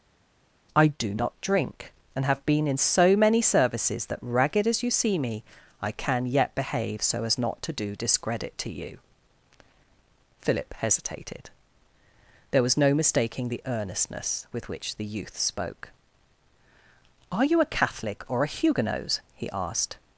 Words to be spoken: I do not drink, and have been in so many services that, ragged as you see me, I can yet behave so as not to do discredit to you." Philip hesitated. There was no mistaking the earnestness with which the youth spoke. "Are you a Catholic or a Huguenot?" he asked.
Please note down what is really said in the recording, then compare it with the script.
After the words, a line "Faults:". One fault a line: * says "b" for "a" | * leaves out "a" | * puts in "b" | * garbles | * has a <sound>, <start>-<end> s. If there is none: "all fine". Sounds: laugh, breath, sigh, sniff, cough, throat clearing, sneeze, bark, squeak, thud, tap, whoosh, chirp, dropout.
I do not drink, and have been in so many services that, ragged as you see me, I can yet behave so as not to do discredit to you." Philip hesitated. There was no mistaking the earnestness with which the youth spoke. "Are you a Catholic or a Huguenot?" he asked.
Faults:
all fine